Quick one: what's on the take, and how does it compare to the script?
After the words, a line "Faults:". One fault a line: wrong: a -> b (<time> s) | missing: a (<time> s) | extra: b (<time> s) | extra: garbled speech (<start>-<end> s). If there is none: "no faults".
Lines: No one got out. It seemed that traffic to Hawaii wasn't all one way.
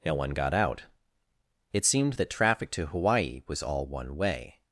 No one got out. It seemed that traffic to Hawaii was all one way.
Faults:
wrong: wasn't -> was (3.5 s)